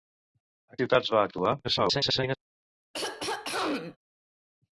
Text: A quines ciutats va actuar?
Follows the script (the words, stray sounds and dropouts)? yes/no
no